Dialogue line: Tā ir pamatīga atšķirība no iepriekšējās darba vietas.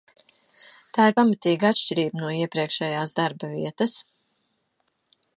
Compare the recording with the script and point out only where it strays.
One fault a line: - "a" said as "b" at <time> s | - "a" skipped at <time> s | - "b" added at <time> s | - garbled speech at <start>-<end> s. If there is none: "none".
none